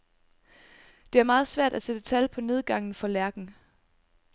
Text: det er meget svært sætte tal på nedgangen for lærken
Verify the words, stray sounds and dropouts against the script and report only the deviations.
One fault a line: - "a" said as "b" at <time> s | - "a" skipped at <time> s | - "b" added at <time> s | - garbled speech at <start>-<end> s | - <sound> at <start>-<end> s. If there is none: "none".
- "at" added at 1.7 s